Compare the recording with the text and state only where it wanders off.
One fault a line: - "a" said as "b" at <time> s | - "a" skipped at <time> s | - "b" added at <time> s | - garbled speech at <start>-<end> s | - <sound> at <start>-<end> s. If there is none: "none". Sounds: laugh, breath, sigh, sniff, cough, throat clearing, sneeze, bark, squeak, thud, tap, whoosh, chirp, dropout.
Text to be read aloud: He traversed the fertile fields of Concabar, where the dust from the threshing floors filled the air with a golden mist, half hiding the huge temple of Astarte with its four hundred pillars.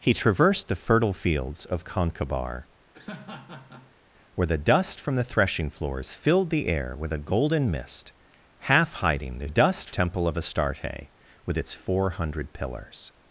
- laugh at 2.9-4.0 s
- "huge" said as "dust" at 9.5 s